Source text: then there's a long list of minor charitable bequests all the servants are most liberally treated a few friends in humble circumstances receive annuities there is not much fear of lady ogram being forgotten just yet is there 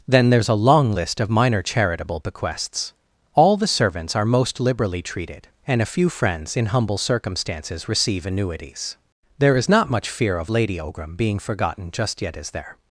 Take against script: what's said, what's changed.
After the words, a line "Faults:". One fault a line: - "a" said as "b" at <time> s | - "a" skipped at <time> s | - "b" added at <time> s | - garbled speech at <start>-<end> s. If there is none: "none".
then there's a long list of minor charitable bequests all the servants are most liberally treated and a few friends in humble circumstances receive annuities there is not much fear of lady ogram being forgotten just yet is there
Faults:
- "and" added at 5.6 s